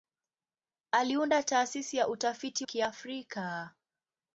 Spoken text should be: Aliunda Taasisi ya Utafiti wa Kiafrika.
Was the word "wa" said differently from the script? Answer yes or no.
yes